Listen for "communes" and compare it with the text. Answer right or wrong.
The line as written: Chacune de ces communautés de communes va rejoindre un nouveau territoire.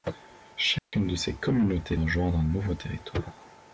wrong